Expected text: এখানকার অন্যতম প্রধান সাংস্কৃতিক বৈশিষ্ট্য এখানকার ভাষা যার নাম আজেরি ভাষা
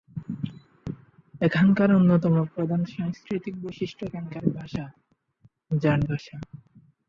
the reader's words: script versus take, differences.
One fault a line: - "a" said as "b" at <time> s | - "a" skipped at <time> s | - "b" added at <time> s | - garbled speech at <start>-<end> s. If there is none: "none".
- "নাম আজেরি" skipped at 6.0 s